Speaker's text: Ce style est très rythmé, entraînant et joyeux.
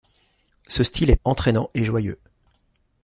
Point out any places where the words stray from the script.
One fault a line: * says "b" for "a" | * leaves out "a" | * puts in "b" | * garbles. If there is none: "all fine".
* leaves out "très rythmé"